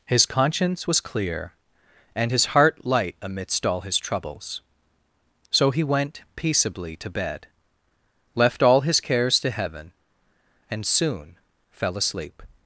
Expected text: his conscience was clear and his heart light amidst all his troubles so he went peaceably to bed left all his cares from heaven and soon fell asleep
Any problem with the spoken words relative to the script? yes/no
yes